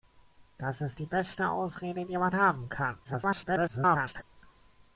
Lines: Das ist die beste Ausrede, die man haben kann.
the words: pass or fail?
fail